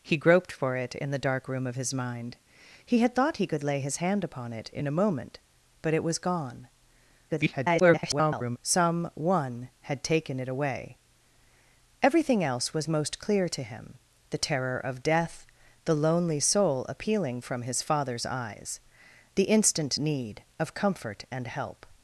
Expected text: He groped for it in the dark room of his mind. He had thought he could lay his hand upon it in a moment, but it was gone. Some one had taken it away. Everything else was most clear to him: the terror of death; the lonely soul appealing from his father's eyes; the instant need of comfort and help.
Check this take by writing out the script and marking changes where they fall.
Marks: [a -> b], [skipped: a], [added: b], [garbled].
He groped for it in the dark room of his mind. He had thought he could lay his hand upon it in a moment, but it was gone. [garbled] Some one had taken it away. Everything else was most clear to him: the terror of death; the lonely soul appealing from his father's eyes; the instant need of comfort and help.